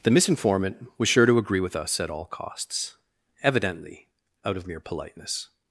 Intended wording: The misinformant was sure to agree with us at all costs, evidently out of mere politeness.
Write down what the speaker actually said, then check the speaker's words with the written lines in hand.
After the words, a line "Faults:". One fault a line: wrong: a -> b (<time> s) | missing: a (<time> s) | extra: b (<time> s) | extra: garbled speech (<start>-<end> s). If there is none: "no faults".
The misinformant was sure to agree with us at all costs, evidently out of mere politeness.
Faults:
no faults